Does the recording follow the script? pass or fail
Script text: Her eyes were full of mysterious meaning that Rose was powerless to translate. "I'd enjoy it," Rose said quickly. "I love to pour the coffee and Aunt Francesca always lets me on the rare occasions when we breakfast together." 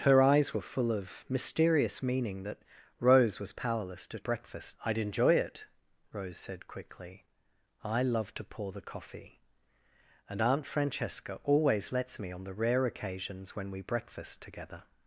fail